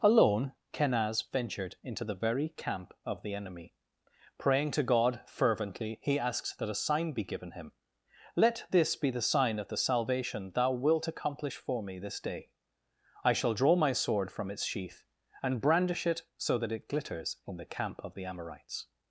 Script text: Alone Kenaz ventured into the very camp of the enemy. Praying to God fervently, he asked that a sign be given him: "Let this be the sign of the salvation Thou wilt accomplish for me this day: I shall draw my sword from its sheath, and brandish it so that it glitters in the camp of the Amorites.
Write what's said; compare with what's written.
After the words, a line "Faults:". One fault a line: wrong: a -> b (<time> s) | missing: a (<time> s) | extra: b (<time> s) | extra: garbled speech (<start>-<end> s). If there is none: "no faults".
Alone Kenaz ventured into the very camp of the enemy. Praying to God fervently, he asks that a sign be given him: "Let this be the sign of the salvation Thou wilt accomplish for me this day: I shall draw my sword from its sheath, and brandish it so that it glitters in the camp of the Amorites.
Faults:
wrong: asked -> asks (6.2 s)